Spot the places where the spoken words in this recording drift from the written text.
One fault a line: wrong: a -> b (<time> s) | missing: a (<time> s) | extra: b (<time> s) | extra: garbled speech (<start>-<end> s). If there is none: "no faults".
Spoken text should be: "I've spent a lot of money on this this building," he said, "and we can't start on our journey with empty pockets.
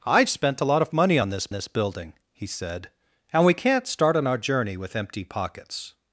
no faults